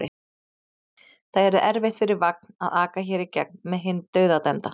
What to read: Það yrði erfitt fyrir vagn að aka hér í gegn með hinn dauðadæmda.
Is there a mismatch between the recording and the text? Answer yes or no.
no